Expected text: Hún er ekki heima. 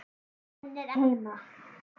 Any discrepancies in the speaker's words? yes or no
yes